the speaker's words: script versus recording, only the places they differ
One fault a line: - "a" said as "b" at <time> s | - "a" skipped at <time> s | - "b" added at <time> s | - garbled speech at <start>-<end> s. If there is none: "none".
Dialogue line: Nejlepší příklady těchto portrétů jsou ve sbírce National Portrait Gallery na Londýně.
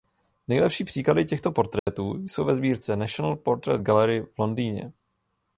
- "na" said as "v" at 4.2 s